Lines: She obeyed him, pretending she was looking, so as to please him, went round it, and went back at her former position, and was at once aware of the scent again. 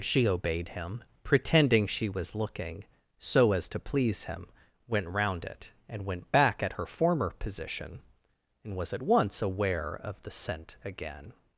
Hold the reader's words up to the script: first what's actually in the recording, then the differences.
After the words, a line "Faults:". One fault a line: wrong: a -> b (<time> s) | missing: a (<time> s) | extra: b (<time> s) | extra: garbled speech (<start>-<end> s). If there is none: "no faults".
She obeyed him, pretending she was looking, so as to please him, went round it, and went back at her former position, and was at once aware of the scent again.
Faults:
no faults